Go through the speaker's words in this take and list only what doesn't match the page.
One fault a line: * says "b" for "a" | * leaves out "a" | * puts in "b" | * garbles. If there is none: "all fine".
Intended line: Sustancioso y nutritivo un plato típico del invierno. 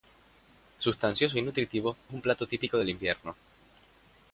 all fine